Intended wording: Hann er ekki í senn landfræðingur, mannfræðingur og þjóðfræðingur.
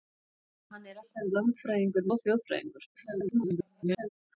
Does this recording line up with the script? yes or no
no